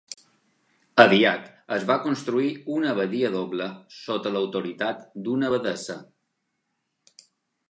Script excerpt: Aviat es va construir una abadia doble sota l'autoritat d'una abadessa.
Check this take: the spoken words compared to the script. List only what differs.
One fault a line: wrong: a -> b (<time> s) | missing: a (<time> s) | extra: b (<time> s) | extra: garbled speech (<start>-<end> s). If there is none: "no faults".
no faults